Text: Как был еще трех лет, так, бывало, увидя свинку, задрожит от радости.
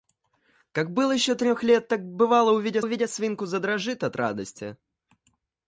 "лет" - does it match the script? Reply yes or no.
yes